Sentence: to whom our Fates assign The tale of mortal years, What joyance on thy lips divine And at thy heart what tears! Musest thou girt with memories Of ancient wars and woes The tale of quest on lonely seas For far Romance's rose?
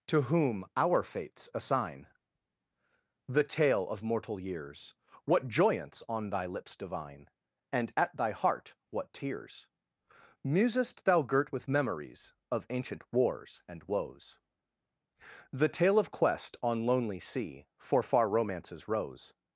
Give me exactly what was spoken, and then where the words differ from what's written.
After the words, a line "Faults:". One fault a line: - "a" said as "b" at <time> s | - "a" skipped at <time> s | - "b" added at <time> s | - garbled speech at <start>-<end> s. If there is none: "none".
to whom our Fates assign The tale of mortal years, What joyance on thy lips divine And at thy heart what tears! Musest thou girt with memories Of ancient wars and woes The tale of quest on lonely sea For far Romance's rose?
Faults:
- "seas" said as "sea" at 17.2 s